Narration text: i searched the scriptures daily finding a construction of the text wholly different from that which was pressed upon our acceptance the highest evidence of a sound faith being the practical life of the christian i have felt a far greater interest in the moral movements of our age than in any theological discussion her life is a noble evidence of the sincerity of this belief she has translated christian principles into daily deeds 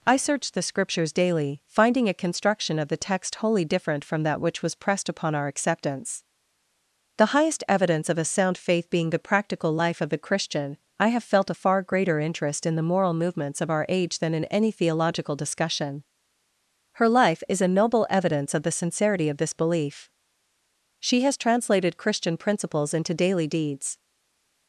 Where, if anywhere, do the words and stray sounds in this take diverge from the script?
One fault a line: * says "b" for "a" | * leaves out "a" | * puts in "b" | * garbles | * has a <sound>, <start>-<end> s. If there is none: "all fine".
all fine